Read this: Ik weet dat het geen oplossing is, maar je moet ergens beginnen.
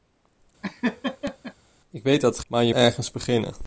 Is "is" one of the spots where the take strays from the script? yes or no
yes